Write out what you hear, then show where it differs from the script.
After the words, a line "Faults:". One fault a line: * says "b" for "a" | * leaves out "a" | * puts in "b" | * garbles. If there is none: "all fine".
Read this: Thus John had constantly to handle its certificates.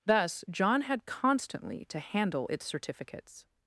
Thus John had constantly to handle its certificates.
Faults:
all fine